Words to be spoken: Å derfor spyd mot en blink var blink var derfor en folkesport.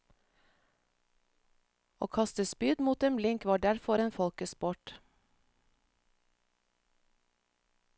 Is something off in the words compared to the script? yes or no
yes